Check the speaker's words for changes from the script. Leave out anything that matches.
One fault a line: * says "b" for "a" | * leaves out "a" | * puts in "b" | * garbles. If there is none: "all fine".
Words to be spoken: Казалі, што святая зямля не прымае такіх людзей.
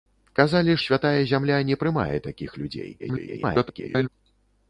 * leaves out "што"
* garbles